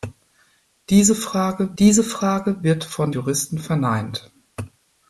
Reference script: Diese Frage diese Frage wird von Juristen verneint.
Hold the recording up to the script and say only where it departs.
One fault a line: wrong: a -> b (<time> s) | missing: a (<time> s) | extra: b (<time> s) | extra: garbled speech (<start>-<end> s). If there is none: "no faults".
no faults